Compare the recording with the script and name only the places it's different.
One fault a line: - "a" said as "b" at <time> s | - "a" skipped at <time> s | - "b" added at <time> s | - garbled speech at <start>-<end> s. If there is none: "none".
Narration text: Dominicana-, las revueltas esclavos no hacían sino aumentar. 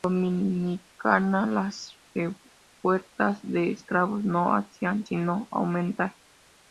- "de" added at 3.4 s